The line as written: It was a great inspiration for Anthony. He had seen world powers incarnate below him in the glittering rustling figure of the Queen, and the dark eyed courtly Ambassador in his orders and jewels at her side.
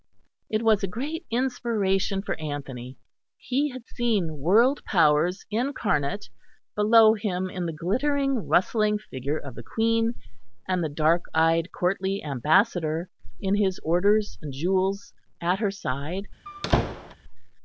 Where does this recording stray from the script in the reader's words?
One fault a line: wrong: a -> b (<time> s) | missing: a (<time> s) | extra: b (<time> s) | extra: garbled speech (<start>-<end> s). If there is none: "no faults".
no faults